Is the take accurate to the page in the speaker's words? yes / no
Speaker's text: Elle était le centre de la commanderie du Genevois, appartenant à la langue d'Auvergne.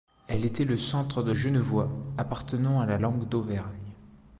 no